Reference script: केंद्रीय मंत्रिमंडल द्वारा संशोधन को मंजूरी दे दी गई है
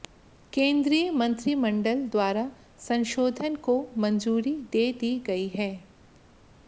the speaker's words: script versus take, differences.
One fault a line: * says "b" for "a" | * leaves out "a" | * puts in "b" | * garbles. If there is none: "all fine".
all fine